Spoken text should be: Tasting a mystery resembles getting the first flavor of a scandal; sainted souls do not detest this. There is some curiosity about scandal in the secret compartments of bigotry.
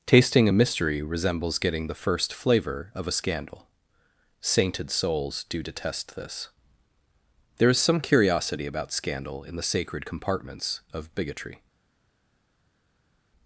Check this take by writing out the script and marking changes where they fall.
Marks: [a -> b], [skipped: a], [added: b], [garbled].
Tasting a mystery resembles getting the first flavor of a scandal; sainted souls do [skipped: not] detest this. There is some curiosity about scandal in the [secret -> sacred] compartments of bigotry.